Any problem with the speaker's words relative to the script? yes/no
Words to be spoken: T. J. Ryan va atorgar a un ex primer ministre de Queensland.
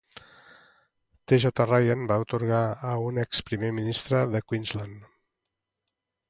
no